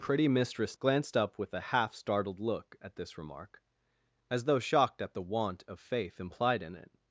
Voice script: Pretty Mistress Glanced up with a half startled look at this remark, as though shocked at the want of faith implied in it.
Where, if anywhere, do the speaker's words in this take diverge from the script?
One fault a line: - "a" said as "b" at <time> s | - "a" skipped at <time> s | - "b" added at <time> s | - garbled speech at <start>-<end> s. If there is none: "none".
none